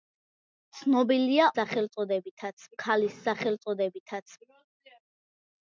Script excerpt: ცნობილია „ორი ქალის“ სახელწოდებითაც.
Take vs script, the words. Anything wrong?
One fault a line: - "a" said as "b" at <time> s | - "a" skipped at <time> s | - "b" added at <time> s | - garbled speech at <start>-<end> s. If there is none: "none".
- "ორი" said as "სახელწოდებითაც" at 1.6 s